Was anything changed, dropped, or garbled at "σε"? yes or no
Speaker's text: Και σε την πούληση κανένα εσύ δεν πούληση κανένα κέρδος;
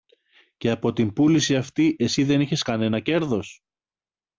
yes